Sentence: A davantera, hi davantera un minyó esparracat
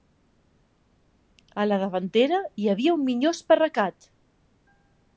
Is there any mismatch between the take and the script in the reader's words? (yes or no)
yes